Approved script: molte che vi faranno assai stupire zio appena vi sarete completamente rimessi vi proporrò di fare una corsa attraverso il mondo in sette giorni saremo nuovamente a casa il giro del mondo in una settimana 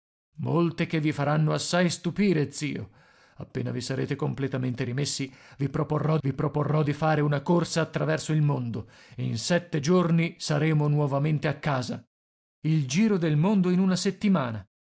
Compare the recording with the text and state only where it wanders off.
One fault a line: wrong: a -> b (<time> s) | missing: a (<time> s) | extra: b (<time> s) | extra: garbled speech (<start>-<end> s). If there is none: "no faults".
extra: vi proporrò (6.2 s)